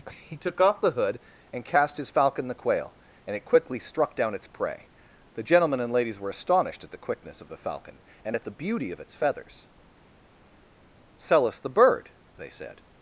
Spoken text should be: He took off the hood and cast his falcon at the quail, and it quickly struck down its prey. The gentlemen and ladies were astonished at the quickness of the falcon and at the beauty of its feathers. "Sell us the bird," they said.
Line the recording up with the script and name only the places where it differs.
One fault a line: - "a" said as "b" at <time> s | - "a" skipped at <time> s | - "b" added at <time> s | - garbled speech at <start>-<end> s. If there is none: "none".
- "at" skipped at 2.5 s